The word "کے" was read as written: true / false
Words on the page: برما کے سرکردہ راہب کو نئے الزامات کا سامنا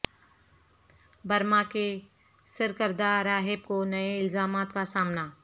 true